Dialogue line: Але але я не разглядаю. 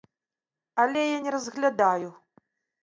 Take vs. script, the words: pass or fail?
fail